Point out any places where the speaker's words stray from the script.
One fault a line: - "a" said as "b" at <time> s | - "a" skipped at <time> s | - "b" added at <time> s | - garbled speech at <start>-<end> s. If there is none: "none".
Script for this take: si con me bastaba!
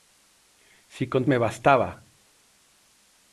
none